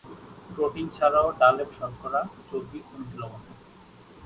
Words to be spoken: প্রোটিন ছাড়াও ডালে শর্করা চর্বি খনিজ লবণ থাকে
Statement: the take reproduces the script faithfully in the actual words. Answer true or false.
true